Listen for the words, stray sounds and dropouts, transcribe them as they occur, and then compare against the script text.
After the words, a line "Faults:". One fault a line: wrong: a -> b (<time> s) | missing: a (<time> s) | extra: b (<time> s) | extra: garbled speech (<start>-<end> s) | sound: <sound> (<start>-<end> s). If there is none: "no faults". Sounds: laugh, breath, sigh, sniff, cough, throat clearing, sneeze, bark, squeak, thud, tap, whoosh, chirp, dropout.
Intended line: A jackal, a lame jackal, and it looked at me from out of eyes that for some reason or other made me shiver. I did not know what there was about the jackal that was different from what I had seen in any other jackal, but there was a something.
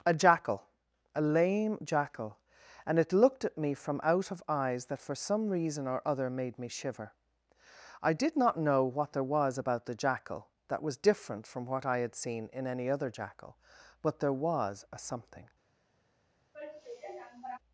A jackal, a lame jackal, and it looked at me from out of eyes that for some reason or other made me shiver. I did not know what there was about the jackal that was different from what I had seen in any other jackal, but there was a something.
Faults:
sound: sigh (16.5-17.6 s)